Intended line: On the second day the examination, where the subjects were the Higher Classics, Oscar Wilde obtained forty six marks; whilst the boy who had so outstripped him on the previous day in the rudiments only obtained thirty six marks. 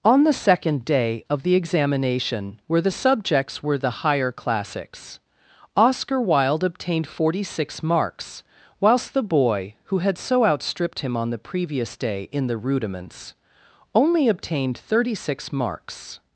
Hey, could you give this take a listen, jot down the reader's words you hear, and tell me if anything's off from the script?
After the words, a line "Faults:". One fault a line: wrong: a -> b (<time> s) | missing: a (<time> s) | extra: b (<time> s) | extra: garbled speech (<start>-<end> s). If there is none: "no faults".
On the second day of the examination, where the subjects were the Higher Classics, Oscar Wilde obtained forty six marks; whilst the boy who had so outstripped him on the previous day in the rudiments only obtained thirty six marks.
Faults:
extra: of (1.3 s)